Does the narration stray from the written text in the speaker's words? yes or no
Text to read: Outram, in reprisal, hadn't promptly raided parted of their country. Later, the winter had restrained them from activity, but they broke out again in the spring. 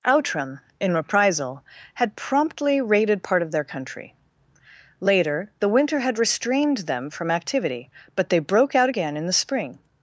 yes